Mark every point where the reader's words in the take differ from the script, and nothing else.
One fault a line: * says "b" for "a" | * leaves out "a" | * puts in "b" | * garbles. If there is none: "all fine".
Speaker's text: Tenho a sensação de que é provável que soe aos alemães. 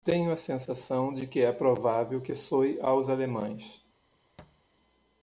all fine